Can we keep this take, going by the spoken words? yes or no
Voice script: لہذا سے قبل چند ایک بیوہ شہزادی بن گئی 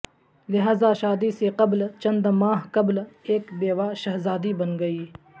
no